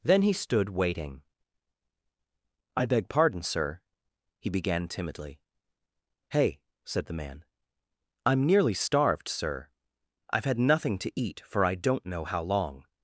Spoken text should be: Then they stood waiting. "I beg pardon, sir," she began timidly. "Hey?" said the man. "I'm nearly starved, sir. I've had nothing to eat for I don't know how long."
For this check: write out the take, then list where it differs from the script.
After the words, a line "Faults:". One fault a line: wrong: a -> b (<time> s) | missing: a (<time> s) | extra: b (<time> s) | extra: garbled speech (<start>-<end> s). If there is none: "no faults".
Then he stood waiting. "I beg pardon, sir," he began timidly. "Hey?" said the man. "I'm nearly starved, sir. I've had nothing to eat for I don't know how long."
Faults:
wrong: they -> he (0.2 s)
wrong: she -> he (4.4 s)